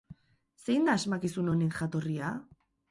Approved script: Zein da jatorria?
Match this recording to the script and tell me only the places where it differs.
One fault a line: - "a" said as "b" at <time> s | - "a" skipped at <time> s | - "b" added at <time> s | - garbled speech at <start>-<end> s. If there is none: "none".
- "asmakizun honen" added at 1.0 s